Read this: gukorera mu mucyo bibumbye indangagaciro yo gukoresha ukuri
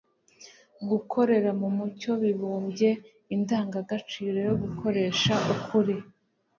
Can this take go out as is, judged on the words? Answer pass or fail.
pass